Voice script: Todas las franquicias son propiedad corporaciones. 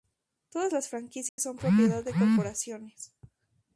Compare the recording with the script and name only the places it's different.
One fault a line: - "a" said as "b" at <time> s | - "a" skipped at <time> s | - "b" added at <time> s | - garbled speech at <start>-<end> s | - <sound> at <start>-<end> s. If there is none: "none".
- dropout at 1.3-1.4 s
- "de" added at 2.0 s